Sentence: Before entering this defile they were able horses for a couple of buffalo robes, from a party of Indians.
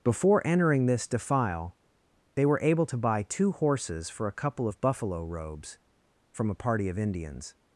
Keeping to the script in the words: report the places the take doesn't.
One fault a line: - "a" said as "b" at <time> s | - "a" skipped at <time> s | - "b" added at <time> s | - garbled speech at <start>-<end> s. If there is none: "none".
- "to buy two" added at 2.9 s